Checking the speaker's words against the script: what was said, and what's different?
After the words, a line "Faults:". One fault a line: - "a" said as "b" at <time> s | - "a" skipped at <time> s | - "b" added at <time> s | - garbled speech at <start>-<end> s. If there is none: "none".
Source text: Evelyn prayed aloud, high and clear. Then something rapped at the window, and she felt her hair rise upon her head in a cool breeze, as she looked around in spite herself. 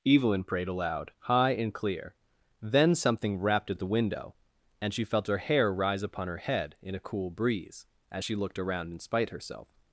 Evelyn prayed aloud, high and clear. Then something rapped at the window, and she felt her hair rise upon her head in a cool breeze, as she looked around in spite herself.
Faults:
none